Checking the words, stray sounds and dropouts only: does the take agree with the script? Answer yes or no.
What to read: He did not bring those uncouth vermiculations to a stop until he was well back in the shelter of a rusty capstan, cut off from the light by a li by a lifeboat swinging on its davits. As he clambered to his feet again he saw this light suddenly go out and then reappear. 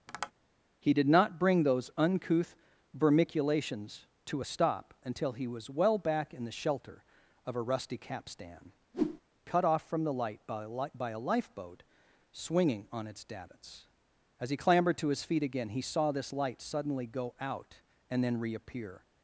no